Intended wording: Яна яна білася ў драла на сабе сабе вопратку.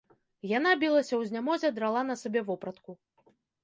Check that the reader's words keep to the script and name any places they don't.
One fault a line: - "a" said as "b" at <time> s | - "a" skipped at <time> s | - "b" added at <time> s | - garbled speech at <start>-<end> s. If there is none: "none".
- "яна" skipped at 0.7 s
- "знямозе" added at 1.3 s
- "сабе" skipped at 2.5 s